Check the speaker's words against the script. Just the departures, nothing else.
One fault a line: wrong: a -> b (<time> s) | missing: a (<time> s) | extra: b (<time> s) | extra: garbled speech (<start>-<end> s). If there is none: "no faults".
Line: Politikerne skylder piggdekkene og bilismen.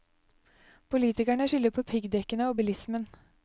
extra: på (1.7 s)